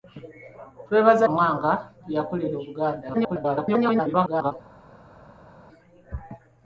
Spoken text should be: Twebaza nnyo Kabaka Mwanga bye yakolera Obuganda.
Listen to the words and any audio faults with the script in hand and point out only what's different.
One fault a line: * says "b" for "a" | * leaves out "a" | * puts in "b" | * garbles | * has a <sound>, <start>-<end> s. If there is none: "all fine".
* leaves out "nnyo Kabaka"
* garbles